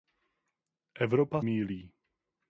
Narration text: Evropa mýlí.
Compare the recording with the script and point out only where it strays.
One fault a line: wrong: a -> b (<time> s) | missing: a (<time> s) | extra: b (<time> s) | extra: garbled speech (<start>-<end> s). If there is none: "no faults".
no faults